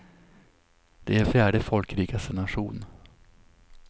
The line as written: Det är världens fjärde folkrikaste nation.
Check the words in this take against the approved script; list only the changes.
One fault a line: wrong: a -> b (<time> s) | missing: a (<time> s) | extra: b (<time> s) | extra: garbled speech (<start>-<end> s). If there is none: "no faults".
missing: världens (1.2 s)